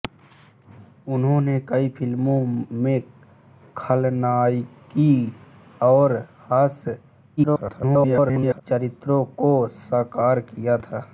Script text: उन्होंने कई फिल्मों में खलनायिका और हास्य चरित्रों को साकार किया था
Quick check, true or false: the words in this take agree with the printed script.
false